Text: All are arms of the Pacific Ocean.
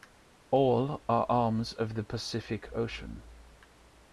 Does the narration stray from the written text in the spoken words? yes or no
no